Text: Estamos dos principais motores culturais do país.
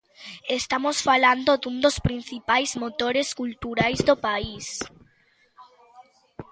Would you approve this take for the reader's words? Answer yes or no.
no